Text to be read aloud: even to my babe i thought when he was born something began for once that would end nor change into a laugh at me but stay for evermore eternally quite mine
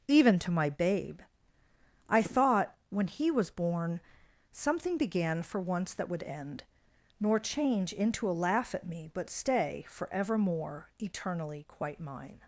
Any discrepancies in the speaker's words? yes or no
no